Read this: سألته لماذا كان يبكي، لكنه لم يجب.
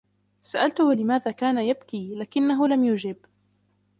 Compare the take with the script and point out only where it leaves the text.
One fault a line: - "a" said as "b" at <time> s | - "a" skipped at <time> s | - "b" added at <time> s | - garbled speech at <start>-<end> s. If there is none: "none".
none